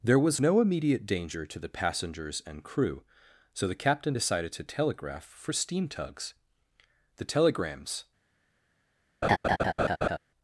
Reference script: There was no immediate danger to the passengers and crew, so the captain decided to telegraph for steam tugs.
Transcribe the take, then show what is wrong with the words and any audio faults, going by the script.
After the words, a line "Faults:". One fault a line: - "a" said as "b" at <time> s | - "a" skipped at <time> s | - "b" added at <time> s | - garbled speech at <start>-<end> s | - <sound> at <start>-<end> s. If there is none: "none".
There was no immediate danger to the passengers and crew, so the captain decided to telegraph for steam tugs. The telegrams
Faults:
- "The telegrams" added at 7.2 s
- laugh at 9.2-10.2 s